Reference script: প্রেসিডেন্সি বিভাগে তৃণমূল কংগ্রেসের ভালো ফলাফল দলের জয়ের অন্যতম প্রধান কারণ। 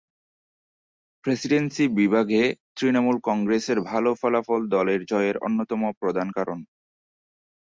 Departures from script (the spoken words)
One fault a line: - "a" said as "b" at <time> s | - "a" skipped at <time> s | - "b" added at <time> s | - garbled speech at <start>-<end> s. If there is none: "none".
none